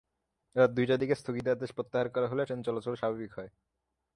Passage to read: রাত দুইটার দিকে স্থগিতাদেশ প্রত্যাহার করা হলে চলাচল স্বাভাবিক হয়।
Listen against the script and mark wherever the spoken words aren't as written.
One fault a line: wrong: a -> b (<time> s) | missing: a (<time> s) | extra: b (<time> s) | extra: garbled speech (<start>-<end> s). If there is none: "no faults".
extra: ট্রেন (2.4 s)